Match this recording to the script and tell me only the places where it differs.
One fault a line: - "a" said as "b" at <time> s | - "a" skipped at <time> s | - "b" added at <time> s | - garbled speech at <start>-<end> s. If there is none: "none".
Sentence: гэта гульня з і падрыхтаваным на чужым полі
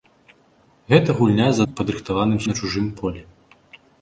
none